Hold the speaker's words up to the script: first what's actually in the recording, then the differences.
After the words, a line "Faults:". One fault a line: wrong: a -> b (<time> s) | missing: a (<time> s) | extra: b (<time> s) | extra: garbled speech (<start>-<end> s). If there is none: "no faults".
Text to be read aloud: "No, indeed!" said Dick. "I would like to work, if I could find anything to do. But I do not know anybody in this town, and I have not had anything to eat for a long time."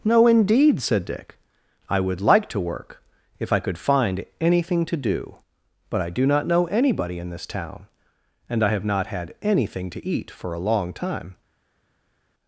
"No, indeed!" said Dick. "I would like to work, if I could find anything to do. But I do not know anybody in this town, and I have not had anything to eat for a long time."
Faults:
no faults